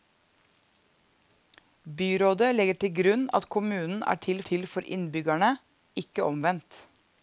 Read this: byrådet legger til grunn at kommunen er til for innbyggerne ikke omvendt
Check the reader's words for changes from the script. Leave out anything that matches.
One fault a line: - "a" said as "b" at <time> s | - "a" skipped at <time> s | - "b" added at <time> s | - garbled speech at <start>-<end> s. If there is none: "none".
- "til" added at 4.5 s